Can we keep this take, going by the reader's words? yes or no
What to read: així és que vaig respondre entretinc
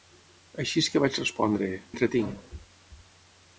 yes